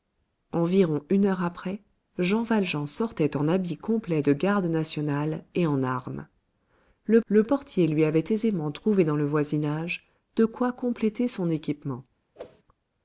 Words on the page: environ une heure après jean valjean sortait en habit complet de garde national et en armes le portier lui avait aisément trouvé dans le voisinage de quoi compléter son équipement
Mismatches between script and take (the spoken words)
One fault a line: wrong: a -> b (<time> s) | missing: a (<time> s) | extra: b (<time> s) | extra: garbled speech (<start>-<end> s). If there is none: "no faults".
extra: le (7.3 s)